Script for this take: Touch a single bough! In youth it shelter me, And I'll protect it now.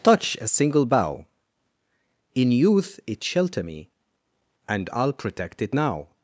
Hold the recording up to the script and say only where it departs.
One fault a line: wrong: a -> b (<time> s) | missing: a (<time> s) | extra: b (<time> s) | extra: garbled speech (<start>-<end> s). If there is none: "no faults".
no faults